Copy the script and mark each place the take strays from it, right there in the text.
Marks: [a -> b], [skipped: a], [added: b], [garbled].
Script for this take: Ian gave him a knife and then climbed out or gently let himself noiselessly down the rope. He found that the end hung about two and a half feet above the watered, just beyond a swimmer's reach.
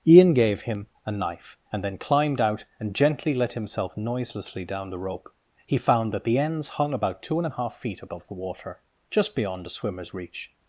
Ian gave him a knife and then climbed out [or -> and] gently let himself noiselessly down the rope. He found that the [end -> ends] hung about two and a half feet above the [watered, -> water] just beyond a swimmer's reach.